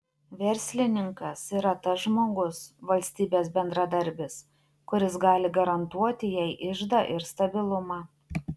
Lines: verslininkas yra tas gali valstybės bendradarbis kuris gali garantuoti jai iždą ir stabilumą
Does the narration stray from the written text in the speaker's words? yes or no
yes